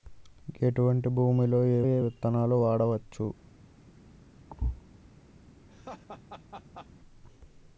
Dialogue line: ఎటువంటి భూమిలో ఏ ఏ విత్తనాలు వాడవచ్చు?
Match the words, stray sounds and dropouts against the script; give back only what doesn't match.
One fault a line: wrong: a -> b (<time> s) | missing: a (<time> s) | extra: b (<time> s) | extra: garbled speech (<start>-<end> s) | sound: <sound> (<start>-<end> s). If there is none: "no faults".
sound: thud (4.5-4.8 s)
sound: laugh (5.7-6.9 s)